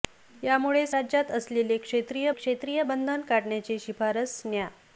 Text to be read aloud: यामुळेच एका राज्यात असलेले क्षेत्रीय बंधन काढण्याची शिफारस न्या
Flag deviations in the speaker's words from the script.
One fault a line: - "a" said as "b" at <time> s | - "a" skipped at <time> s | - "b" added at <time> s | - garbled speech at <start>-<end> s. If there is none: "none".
- "एका" skipped at 0.9 s
- "क्षेत्रीय" added at 2.3 s